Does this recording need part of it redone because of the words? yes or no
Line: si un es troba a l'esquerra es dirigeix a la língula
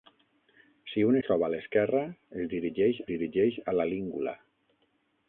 yes